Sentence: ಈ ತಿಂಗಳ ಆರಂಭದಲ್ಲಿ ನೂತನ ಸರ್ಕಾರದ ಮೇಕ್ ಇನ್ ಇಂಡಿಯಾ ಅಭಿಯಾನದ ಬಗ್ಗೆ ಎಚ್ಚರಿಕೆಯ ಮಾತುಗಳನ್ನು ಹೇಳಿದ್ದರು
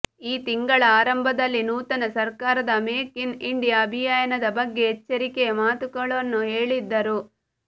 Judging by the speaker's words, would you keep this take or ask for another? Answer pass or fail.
pass